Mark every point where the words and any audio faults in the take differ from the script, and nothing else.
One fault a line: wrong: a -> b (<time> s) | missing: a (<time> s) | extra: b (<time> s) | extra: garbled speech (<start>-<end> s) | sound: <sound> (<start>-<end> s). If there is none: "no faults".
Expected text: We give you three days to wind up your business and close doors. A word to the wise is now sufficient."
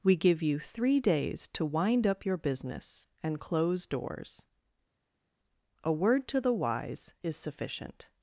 missing: now (7.4 s)